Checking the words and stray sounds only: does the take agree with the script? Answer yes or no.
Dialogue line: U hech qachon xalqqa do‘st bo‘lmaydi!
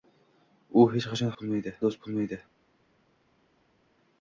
no